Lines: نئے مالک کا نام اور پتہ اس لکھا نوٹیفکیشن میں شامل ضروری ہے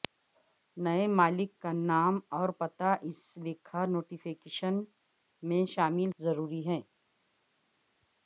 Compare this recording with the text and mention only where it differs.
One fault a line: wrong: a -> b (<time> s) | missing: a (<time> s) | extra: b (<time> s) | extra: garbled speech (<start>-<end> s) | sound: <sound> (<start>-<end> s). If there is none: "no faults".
no faults